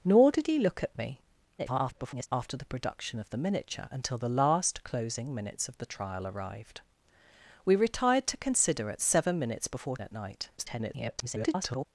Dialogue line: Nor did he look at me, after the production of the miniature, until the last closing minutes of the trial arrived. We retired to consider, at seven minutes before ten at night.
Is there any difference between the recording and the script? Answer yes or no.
yes